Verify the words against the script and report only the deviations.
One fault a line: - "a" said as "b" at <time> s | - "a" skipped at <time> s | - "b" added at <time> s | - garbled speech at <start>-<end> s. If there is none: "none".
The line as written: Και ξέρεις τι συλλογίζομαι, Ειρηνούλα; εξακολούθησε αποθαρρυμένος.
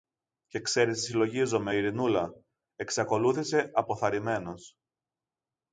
none